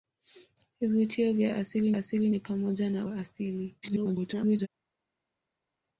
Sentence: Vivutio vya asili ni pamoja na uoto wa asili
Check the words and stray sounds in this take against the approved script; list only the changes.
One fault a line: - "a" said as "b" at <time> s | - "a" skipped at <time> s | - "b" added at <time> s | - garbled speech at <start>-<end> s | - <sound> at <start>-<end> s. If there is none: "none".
- "asili" added at 1.9 s
- "uoto" skipped at 3.1 s
- garbled speech at 3.8-4.7 s